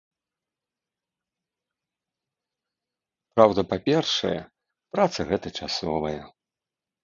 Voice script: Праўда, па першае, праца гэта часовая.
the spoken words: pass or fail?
pass